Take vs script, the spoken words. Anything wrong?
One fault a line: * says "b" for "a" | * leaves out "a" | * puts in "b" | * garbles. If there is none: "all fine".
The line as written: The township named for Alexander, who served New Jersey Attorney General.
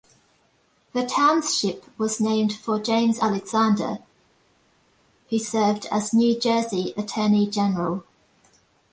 * puts in "was"
* puts in "James"
* puts in "as"